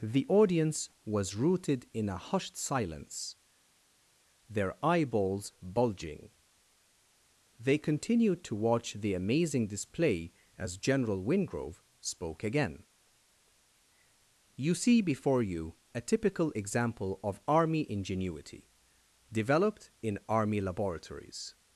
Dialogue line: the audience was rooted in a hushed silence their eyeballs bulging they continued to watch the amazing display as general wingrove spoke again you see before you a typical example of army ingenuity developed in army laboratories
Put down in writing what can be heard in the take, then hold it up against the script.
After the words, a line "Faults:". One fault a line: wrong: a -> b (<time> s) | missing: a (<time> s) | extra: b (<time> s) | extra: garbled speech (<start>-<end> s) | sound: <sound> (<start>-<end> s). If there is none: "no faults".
the audience was rooted in a hushed silence their eyeballs bulging they continued to watch the amazing display as general wingrove spoke again you see before you a typical example of army ingenuity developed in army laboratories
Faults:
no faults